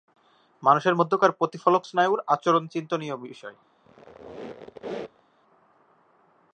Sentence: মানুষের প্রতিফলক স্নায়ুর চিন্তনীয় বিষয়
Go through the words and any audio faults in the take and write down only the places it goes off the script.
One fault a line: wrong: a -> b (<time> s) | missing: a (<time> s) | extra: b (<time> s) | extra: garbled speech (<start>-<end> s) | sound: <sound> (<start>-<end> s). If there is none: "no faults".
extra: মধ্যকার (0.9 s)
extra: আচরণ (2.3 s)
sound: squeak (3.8-5.3 s)